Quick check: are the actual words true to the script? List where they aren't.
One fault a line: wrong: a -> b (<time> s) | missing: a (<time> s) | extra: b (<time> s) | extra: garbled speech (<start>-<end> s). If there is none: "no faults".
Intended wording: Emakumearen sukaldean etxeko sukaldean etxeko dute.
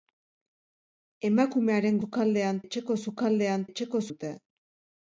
no faults